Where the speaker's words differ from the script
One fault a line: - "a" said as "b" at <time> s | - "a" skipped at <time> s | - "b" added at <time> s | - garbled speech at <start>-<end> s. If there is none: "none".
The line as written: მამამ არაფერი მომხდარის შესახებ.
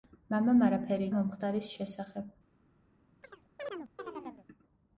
none